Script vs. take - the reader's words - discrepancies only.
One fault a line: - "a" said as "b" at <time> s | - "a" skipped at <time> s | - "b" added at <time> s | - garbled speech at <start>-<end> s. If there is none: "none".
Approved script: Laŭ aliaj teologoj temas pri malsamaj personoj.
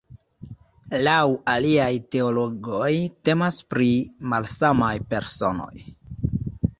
none